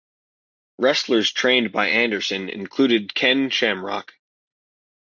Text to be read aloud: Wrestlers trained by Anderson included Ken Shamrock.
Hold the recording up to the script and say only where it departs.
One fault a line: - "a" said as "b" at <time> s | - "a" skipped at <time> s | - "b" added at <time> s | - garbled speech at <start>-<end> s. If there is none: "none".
none